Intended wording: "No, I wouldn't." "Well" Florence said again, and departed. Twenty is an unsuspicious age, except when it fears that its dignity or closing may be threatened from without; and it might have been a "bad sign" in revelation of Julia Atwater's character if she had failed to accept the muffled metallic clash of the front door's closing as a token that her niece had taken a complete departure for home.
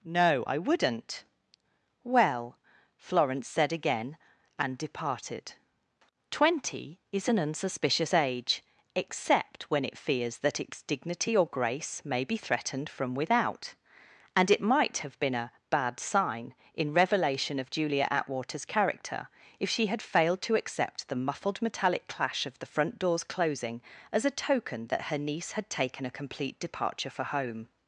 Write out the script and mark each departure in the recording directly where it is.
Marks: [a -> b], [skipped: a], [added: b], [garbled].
"No, I wouldn't." "Well" Florence said again, and departed. Twenty is an unsuspicious age, except when it fears that its dignity or [closing -> grace] may be threatened from without; and it might have been a "bad sign" in revelation of Julia Atwater's character if she had failed to accept the muffled metallic clash of the front door's closing as a token that her niece had taken a complete departure for home.